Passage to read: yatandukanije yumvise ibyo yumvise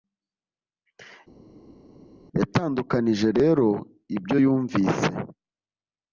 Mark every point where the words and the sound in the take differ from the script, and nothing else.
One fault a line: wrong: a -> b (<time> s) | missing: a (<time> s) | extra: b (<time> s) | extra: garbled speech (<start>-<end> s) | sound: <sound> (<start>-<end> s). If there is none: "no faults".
wrong: yumvise -> rero (3.4 s)